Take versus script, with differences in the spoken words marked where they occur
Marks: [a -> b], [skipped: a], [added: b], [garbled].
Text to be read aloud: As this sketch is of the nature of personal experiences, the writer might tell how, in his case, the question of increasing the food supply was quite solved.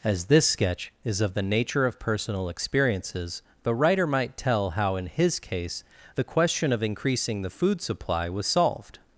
As this sketch is of the nature of personal experiences, the writer might tell how, in his case, the question of increasing the food supply was [skipped: quite] solved.